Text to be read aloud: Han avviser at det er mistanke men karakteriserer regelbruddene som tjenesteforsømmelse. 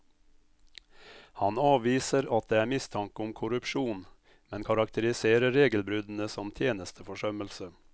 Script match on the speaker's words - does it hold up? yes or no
no